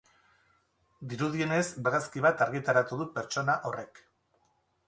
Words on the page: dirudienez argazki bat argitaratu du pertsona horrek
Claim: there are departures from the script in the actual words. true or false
false